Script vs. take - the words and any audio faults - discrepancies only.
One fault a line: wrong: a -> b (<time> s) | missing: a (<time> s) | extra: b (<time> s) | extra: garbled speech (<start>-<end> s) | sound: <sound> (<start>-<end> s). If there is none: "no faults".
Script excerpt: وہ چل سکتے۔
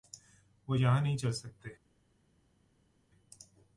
extra: یہاں نہیں (0.8 s)